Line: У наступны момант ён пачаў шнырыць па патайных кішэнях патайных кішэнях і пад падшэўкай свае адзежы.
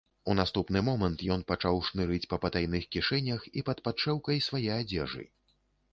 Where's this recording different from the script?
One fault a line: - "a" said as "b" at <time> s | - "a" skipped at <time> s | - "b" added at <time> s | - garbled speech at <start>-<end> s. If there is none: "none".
- "патайных кішэнях" skipped at 3.5 s